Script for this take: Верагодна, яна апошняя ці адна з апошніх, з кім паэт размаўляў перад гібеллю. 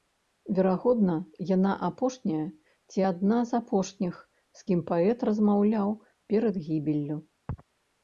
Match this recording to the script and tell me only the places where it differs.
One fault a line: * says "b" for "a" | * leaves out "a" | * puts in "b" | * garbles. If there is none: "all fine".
all fine